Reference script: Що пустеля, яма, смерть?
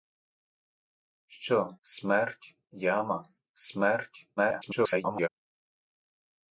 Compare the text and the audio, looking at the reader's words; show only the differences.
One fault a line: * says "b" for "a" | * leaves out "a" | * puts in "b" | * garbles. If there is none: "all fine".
* says "смерть" for "пустеля"
* garbles